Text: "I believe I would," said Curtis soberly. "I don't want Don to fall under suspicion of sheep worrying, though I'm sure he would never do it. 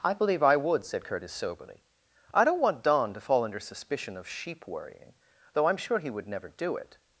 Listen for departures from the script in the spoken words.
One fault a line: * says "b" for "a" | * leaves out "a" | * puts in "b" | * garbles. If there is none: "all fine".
all fine